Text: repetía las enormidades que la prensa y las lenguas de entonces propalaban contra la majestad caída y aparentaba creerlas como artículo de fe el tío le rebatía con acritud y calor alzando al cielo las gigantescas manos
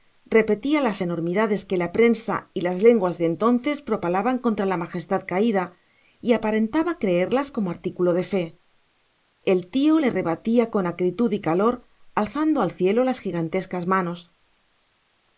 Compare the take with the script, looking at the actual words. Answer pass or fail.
pass